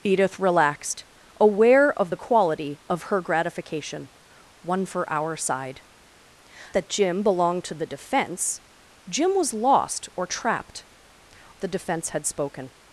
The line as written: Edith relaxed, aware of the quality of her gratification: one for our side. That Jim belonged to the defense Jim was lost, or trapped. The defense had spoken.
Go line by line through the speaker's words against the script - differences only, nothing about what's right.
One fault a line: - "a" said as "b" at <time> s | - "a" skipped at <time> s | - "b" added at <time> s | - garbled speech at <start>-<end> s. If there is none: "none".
none